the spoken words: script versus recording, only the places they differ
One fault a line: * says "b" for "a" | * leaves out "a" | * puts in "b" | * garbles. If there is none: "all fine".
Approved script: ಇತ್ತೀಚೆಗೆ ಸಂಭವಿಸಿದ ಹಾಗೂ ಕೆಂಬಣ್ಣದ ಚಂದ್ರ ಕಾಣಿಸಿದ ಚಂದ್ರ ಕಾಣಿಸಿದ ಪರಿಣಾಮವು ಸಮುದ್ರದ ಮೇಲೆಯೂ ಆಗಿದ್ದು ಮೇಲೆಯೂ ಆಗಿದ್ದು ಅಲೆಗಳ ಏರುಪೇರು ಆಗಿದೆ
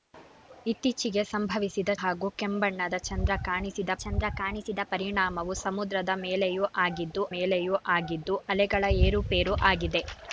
all fine